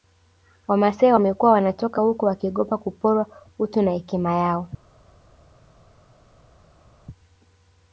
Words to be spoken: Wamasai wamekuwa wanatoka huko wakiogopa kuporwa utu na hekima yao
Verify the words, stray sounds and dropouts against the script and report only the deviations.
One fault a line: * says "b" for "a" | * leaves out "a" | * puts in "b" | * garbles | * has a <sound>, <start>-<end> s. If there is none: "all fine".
all fine